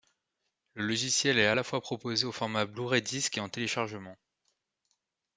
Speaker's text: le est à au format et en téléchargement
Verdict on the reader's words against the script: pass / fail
fail